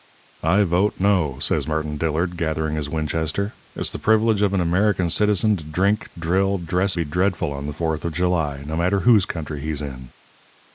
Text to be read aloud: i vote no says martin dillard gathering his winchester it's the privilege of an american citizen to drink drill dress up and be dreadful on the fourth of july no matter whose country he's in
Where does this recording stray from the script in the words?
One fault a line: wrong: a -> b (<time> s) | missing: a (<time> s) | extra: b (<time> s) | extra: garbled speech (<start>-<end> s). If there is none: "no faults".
missing: up and (7.0 s)